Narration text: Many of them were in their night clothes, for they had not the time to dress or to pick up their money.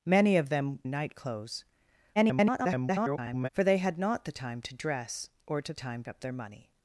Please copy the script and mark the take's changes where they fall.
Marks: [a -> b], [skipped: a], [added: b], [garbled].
Many of them [skipped: were in their] night clothes, [garbled] for they had not the time to dress or to [pick -> time] up their money.